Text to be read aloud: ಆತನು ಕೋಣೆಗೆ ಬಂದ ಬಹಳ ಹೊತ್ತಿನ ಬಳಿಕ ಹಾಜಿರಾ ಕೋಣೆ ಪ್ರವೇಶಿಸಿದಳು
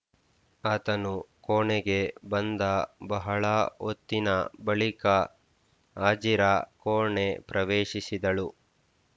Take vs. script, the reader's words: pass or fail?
pass